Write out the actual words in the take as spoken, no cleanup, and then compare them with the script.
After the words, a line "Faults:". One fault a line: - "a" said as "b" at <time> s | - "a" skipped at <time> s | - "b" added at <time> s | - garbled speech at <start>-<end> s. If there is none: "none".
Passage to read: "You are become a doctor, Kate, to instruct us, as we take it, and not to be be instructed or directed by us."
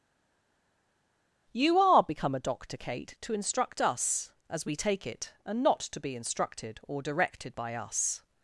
"You are become a doctor, Kate, to instruct us, as we take it, and not to be instructed or directed by us."
Faults:
- "be" skipped at 6.1 s